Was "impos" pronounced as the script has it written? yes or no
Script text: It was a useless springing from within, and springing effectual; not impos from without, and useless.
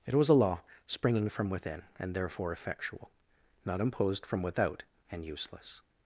no